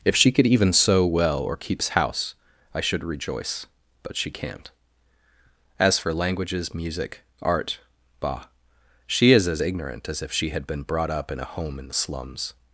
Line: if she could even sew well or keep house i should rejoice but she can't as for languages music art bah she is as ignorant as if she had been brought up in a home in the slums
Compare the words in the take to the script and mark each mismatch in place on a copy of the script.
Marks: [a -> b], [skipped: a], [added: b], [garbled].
if she could even sew well or [keep -> keeps] house i should rejoice but she can't as for languages music art bah she is as ignorant as if she had been brought up in a home in the slums